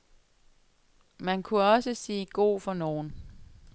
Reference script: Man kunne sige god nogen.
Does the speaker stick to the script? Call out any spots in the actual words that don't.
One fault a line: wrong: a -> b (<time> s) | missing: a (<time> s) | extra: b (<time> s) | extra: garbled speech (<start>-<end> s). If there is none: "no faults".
extra: også (1.6 s)
extra: for (2.6 s)